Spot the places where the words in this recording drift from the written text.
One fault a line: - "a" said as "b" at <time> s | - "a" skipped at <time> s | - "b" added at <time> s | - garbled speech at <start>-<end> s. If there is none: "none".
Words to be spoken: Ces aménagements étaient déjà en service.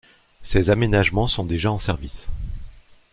- "étaient" said as "sont" at 1.3 s